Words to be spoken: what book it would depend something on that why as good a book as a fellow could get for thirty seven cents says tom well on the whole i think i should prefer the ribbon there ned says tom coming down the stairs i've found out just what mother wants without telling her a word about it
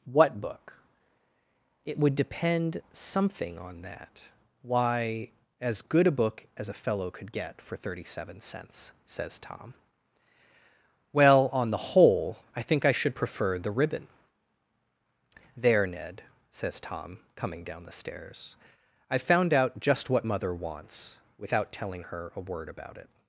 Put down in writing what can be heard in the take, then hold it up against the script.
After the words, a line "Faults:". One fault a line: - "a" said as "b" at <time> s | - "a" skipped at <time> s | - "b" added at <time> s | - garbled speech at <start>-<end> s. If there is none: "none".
what book it would depend something on that why as good a book as a fellow could get for thirty seven cents says tom well on the whole i think i should prefer the ribbon there ned says tom coming down the stairs i've found out just what mother wants without telling her a word about it
Faults:
none